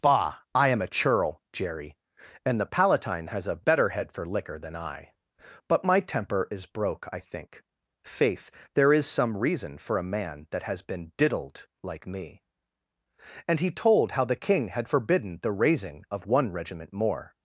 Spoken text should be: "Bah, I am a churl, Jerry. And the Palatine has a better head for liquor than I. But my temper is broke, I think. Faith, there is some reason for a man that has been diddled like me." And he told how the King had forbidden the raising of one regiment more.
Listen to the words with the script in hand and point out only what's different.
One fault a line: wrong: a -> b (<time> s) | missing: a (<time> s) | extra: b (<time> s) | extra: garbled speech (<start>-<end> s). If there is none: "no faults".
no faults